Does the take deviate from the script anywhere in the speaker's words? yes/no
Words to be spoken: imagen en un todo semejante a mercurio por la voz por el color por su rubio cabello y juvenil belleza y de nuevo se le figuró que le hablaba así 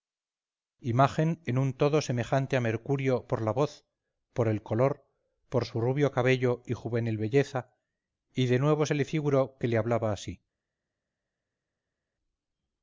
no